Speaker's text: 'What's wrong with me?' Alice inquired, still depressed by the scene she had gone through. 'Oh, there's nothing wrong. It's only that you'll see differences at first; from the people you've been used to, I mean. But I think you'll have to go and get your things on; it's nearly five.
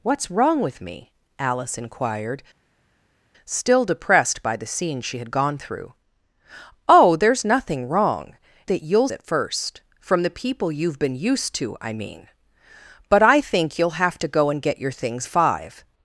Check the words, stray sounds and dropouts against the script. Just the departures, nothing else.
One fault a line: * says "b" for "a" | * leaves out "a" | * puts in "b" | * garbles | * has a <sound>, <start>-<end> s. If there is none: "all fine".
* leaves out "It's only"
* leaves out "see differences"
* leaves out "on it's nearly"